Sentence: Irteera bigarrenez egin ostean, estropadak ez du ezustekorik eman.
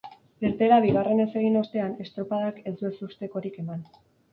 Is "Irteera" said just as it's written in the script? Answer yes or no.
yes